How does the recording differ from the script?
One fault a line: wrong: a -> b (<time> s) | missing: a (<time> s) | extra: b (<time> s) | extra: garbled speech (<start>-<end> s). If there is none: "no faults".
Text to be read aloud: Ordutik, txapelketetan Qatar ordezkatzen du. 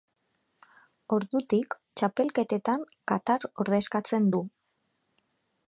no faults